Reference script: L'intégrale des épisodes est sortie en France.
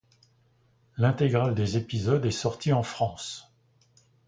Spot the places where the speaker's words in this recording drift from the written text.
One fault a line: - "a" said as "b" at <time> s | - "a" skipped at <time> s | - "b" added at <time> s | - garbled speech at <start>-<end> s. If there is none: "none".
none